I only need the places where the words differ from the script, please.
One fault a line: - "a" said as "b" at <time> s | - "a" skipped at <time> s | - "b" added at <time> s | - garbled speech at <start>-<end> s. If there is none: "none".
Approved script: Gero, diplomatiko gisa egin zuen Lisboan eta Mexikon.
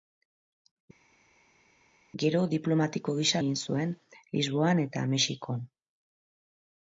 none